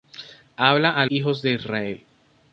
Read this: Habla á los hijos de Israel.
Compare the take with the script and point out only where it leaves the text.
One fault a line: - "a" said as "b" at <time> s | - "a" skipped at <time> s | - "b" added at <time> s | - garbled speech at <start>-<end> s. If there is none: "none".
- "los" skipped at 1.1 s